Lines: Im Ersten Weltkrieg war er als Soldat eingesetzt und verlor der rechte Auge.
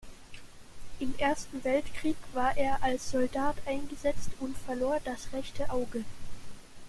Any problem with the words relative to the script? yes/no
yes